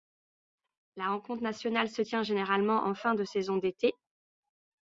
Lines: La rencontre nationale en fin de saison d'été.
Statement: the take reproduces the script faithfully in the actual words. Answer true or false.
false